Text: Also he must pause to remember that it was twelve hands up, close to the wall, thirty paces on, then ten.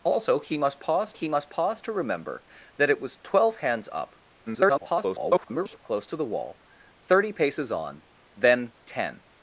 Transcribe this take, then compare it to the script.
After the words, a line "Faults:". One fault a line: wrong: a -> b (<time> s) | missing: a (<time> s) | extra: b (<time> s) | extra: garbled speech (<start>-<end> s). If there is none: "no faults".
Also he must pause he must pause to remember that it was twelve hands up, [garbled] close to the wall, thirty paces on, then ten.
Faults:
extra: he must pause (1.1 s)
extra: garbled speech (4.5-5.8 s)